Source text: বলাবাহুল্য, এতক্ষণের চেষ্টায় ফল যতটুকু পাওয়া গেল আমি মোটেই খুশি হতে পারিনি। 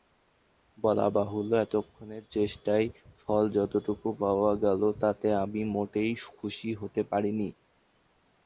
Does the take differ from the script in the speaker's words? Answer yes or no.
yes